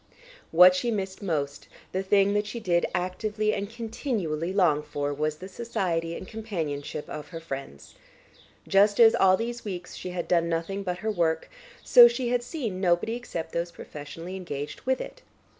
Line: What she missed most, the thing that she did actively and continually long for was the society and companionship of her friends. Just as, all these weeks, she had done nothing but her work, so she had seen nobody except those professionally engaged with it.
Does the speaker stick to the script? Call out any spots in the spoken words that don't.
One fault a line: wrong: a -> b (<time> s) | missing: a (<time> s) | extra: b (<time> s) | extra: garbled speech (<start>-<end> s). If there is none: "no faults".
no faults